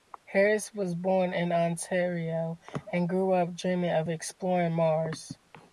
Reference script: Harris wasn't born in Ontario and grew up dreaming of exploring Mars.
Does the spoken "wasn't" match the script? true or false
false